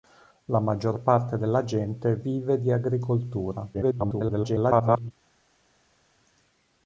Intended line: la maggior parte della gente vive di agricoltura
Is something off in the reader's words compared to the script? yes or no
yes